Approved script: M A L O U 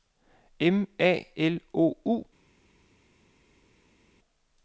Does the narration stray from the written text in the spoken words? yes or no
no